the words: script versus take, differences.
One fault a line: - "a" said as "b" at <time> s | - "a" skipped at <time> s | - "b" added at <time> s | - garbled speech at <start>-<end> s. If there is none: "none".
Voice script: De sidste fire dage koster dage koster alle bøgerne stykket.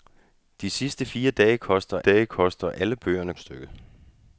none